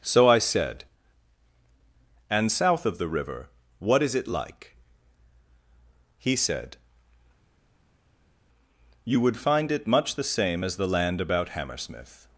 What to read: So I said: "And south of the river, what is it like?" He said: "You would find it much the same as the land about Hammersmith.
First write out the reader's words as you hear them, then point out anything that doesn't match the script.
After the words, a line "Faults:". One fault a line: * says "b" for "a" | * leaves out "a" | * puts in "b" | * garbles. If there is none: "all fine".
So I said: "And south of the river, what is it like?" He said: "You would find it much the same as the land about Hammersmith.
Faults:
all fine